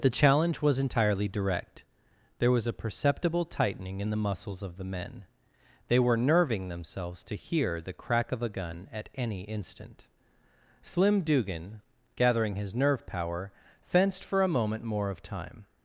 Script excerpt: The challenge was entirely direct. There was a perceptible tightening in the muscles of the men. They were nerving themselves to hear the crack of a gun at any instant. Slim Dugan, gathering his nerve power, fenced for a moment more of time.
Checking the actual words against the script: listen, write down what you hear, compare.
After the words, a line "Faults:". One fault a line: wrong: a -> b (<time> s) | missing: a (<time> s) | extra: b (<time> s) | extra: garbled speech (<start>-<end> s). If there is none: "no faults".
The challenge was entirely direct. There was a perceptible tightening in the muscles of the men. They were nerving themselves to hear the crack of a gun at any instant. Slim Dugan, gathering his nerve power, fenced for a moment more of time.
Faults:
no faults